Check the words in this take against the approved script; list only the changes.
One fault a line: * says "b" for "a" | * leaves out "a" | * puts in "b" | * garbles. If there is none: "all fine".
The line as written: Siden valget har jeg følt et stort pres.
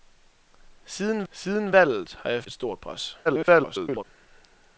* puts in "siden"
* leaves out "følt"
* garbles